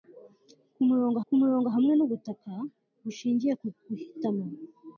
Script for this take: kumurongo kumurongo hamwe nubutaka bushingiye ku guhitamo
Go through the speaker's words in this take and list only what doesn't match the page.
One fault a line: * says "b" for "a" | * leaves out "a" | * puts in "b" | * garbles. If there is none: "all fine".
all fine